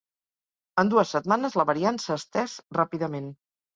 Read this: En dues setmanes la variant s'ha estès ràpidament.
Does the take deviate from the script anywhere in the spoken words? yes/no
no